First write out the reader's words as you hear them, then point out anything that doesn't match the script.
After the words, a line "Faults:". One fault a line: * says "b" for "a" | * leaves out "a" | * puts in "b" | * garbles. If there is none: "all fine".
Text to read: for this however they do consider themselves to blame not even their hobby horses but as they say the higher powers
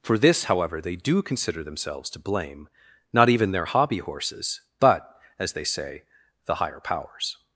for this however they do consider themselves to blame not even their hobby horses but as they say the higher powers
Faults:
all fine